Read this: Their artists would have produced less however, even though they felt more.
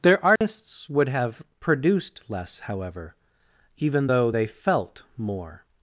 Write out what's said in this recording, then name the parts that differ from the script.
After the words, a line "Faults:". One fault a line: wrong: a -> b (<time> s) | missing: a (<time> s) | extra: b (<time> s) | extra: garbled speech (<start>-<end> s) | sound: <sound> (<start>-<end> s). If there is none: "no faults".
Their artists would have produced less however, even though they felt more.
Faults:
sound: dropout (0.4-0.4 s)